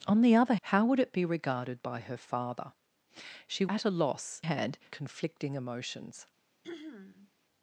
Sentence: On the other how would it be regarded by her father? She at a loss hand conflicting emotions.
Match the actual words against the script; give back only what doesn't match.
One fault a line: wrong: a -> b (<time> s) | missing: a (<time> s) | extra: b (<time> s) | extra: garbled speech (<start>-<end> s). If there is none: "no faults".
no faults